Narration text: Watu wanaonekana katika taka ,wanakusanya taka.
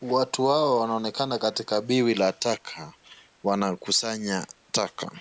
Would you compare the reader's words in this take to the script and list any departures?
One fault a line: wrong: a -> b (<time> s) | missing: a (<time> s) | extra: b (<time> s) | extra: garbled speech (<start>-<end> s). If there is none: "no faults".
extra: hawa (0.5 s)
extra: biwi la (1.8 s)